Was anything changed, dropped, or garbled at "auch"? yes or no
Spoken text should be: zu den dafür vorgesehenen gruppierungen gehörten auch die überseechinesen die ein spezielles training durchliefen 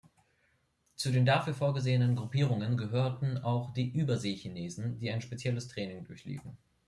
no